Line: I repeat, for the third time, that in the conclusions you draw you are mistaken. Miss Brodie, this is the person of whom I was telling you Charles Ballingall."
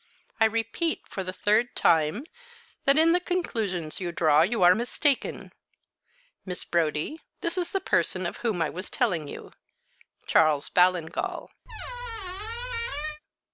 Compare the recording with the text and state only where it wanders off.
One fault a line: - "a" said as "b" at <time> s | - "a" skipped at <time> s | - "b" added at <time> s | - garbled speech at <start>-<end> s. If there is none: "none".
none